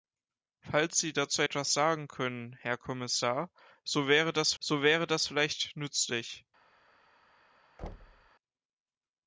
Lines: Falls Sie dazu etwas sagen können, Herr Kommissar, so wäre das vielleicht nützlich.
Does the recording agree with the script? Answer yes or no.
no